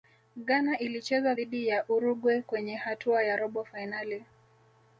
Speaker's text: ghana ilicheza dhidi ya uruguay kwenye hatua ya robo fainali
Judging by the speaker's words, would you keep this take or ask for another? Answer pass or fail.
pass